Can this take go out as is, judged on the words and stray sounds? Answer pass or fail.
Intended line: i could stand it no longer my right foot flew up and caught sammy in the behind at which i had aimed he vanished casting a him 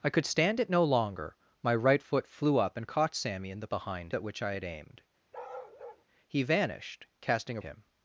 fail